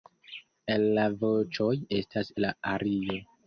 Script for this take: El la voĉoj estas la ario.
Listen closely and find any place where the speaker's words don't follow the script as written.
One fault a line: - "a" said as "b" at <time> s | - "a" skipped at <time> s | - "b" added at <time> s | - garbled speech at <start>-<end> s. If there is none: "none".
none